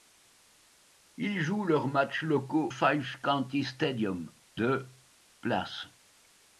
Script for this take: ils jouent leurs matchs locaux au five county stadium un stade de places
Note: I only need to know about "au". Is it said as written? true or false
false